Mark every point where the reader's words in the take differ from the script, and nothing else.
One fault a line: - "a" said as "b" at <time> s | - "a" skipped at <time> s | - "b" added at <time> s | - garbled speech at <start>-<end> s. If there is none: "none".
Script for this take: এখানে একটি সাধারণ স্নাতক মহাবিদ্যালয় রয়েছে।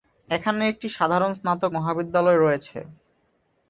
none